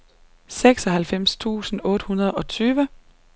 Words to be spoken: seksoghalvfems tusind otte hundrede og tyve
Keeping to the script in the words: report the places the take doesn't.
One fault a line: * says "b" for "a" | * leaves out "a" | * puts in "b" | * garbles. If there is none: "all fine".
all fine